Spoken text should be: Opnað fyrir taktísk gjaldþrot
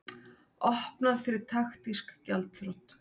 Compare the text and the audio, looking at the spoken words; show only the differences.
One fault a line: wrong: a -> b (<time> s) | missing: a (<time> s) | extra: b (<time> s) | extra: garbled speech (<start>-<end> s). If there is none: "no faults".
no faults